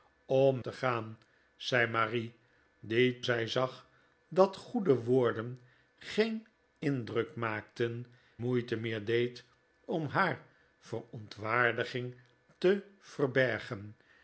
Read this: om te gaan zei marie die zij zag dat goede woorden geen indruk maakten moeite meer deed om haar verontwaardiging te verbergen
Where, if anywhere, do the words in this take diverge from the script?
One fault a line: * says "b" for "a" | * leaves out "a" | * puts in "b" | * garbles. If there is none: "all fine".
all fine